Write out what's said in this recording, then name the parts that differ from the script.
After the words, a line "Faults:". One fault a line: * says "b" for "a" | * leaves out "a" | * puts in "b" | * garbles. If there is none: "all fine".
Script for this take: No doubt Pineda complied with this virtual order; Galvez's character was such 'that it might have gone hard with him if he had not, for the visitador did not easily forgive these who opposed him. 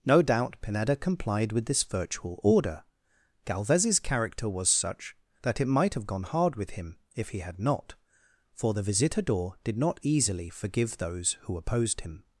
No doubt Pineda complied with this virtual order; Galvez's character was such 'that it might have gone hard with him if he had not, for the visitador did not easily forgive those who opposed him.
Faults:
* says "those" for "these"